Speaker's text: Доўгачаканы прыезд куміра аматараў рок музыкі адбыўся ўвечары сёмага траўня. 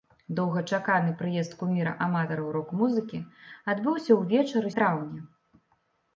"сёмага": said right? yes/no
no